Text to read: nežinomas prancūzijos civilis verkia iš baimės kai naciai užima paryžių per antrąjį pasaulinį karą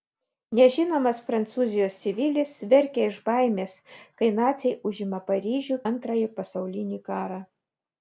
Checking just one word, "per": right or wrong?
wrong